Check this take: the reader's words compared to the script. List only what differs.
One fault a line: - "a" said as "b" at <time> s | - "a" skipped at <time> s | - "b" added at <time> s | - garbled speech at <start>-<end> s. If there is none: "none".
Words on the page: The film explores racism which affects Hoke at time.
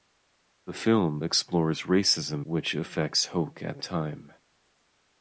none